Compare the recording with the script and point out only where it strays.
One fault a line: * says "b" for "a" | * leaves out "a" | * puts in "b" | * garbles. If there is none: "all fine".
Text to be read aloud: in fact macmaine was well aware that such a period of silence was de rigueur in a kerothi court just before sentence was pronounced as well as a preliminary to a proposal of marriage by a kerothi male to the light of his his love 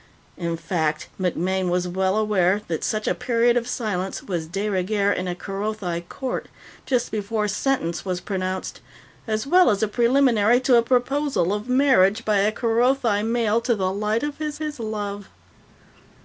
all fine